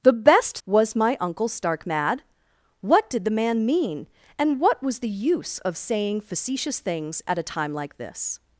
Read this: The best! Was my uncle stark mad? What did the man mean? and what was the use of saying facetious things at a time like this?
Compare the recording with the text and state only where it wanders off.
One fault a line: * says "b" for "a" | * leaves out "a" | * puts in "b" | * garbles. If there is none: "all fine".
all fine